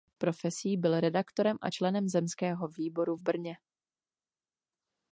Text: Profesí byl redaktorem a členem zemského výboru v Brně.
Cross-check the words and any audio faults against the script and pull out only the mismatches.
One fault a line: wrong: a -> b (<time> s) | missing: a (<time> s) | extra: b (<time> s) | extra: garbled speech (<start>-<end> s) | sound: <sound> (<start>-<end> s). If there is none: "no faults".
no faults